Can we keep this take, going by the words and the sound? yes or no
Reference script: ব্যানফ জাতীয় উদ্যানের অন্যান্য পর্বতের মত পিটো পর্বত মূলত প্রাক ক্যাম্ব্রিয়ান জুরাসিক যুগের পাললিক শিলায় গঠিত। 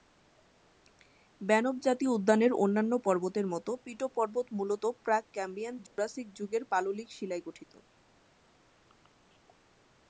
no